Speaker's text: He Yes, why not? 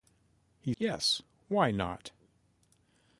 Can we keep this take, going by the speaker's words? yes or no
yes